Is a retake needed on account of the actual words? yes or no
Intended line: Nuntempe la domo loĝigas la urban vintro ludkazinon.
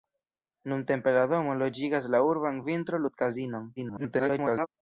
yes